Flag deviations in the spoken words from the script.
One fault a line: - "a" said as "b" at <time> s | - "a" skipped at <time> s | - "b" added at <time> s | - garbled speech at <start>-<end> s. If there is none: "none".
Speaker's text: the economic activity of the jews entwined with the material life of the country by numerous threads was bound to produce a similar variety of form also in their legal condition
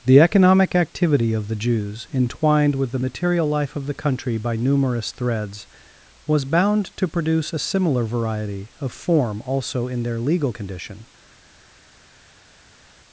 none